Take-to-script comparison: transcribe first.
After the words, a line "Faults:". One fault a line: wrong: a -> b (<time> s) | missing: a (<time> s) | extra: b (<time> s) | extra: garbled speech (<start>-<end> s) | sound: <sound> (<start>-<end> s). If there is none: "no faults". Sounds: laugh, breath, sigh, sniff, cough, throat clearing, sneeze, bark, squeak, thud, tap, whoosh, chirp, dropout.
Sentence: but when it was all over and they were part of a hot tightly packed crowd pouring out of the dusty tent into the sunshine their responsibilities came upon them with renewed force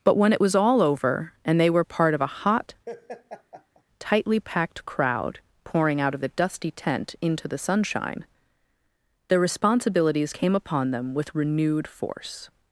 but when it was all over and they were part of a hot tightly packed crowd pouring out of the dusty tent into the sunshine their responsibilities came upon them with renewed force
Faults:
sound: laugh (2.9-3.8 s)